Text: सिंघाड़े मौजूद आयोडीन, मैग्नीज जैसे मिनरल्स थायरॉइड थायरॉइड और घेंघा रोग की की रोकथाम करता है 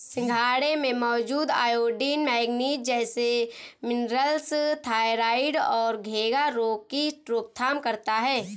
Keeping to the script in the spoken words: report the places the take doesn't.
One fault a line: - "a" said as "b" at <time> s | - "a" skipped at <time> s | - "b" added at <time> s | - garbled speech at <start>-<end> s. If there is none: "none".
- "में" added at 0.8 s
- "थायरॉइड" skipped at 5.6 s
- "की" skipped at 7.1 s